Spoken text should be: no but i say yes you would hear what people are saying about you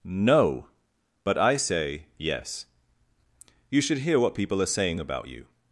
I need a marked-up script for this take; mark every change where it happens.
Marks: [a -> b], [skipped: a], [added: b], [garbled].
no but i say yes you [would -> should] hear what people are saying about you